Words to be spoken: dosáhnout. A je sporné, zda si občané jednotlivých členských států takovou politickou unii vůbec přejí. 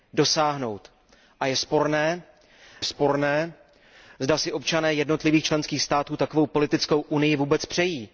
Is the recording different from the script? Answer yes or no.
yes